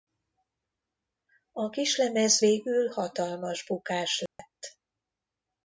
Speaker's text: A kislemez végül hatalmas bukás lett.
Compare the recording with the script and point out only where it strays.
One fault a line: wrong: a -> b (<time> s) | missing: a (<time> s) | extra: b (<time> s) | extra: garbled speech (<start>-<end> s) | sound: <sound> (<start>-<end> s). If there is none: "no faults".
sound: dropout (4.3-4.4 s)